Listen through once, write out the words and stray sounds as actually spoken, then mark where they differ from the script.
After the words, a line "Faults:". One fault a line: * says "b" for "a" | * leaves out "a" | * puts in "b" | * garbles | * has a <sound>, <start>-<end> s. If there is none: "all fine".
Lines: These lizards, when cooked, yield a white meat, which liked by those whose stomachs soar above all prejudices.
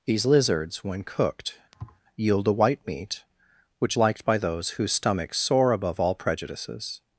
These lizards, when cooked, yield a white meat, which liked by those whose stomachs soar above all prejudices.
Faults:
* has a thud, 1.7-2.0 s